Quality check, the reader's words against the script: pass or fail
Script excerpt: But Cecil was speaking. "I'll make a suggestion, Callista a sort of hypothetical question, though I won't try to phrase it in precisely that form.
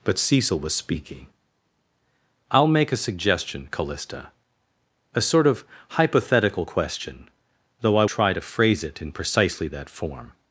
fail